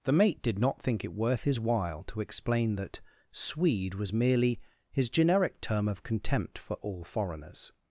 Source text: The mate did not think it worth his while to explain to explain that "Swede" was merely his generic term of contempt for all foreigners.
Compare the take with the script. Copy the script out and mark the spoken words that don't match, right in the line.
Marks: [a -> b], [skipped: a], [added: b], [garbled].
The mate did not think it worth his while to explain [skipped: to explain] that "Swede" was merely his generic term of contempt for all foreigners.